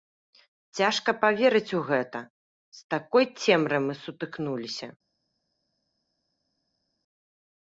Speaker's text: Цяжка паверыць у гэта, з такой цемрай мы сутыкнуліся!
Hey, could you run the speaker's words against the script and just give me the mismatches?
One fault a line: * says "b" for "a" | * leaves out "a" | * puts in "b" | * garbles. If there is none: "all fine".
all fine